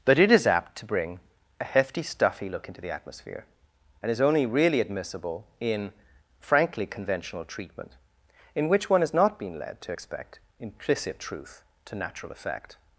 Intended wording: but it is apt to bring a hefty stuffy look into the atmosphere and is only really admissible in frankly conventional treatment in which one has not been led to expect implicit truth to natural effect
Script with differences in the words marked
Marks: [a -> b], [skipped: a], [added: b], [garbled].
but it is apt to bring a hefty stuffy look into the atmosphere and is only really admissible in frankly conventional treatment in which one has not been led to expect implicit truth to natural effect